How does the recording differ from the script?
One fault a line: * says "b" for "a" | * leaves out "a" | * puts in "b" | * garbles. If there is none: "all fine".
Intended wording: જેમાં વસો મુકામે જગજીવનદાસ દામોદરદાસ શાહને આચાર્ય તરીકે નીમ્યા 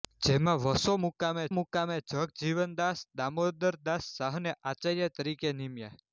* puts in "મુકામે"